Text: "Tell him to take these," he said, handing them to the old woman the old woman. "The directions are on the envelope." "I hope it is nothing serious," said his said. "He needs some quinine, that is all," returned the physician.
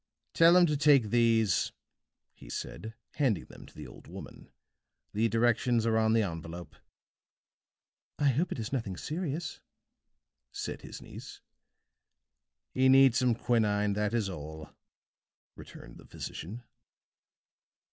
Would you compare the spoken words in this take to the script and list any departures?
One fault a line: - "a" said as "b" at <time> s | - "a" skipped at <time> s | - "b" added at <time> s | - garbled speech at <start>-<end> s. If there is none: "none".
- "old woman The" skipped at 5.3 s
- "said" said as "niece" at 11.0 s